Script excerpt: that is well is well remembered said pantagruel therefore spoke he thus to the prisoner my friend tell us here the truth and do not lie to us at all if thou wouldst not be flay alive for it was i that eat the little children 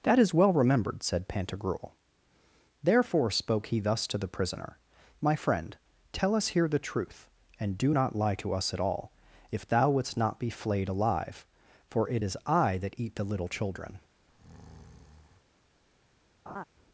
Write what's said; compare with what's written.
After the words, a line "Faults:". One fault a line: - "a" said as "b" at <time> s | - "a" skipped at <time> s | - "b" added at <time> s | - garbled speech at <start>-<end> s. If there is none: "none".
that is well remembered said pantagruel therefore spoke he thus to the prisoner my friend tell us here the truth and do not lie to us at all if thou wouldst not be flayed alive for it is i that eat the little children
Faults:
- "is well" skipped at 0.5 s
- "flay" said as "flayed" at 10.5 s
- "was" said as "is" at 12.2 s